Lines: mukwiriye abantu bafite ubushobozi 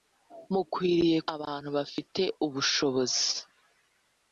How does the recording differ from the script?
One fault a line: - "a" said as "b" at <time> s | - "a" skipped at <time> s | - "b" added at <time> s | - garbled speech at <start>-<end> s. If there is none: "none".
none